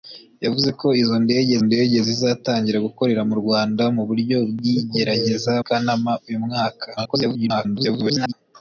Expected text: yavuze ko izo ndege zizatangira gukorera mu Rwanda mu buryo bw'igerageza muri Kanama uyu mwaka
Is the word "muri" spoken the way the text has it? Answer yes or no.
no